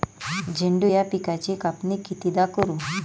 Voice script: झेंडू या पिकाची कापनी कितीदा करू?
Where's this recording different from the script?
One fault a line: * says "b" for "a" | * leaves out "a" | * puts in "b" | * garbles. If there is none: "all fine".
all fine